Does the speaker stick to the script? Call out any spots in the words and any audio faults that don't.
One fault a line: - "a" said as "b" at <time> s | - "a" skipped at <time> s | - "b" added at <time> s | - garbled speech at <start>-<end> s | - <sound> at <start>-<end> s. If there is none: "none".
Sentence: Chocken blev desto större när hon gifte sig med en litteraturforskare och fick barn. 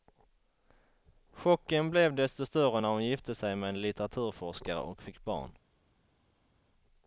none